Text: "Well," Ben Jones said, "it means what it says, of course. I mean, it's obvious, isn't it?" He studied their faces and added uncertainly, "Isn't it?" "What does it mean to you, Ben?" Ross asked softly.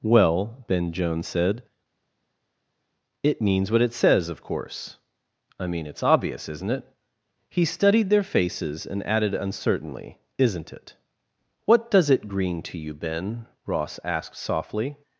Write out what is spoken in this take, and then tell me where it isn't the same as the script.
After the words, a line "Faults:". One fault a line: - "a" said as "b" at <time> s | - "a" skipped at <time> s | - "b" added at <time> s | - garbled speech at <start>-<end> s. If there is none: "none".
"Well," Ben Jones said, "it means what it says, of course. I mean, it's obvious, isn't it?" He studied their faces and added uncertainly, "Isn't it?" "What does it green to you, Ben?" Ross asked softly.
Faults:
- "mean" said as "green" at 12.2 s